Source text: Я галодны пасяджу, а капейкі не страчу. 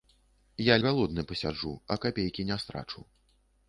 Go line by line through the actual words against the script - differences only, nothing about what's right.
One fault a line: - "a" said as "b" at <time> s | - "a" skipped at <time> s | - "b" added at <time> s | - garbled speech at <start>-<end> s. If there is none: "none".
none